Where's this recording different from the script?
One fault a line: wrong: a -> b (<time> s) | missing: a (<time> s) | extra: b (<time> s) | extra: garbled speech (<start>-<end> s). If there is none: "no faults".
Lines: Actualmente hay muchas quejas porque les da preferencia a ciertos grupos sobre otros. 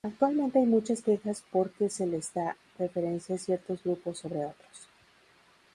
extra: se (1.9 s)